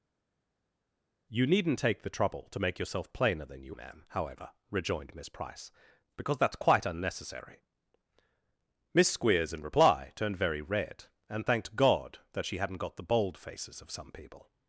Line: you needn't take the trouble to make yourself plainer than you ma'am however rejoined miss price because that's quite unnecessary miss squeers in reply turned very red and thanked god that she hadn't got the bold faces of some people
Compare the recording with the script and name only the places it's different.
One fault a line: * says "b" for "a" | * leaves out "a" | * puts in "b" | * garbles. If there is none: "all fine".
all fine